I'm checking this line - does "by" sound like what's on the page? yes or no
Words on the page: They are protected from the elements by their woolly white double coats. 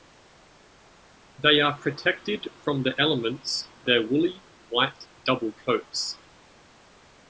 no